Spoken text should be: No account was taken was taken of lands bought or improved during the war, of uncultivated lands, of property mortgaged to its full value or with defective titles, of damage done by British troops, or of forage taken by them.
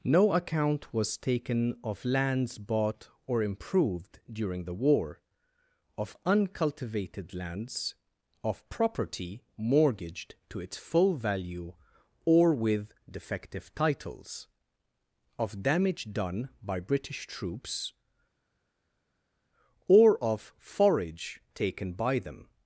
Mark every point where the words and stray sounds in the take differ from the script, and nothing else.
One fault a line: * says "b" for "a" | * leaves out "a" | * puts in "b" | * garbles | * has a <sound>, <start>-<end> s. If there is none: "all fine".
* leaves out "was taken"